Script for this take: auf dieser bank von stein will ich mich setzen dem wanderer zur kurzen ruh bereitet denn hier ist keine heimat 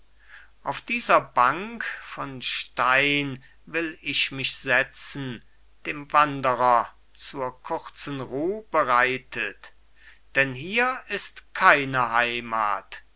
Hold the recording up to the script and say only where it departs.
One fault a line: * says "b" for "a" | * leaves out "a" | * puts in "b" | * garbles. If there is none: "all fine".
all fine